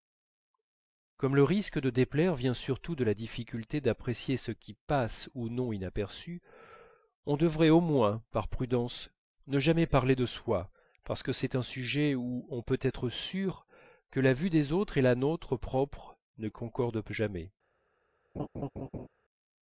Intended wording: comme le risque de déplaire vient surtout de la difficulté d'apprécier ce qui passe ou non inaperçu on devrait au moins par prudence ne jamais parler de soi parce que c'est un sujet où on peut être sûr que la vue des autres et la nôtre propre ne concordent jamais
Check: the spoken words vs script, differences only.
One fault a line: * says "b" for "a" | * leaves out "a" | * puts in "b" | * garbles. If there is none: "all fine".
all fine